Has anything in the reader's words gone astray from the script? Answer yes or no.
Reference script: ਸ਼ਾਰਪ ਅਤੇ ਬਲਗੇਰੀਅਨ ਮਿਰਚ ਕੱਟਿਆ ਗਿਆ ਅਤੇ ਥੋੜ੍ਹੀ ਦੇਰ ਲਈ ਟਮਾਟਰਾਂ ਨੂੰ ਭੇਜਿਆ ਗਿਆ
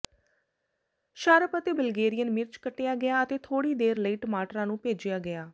no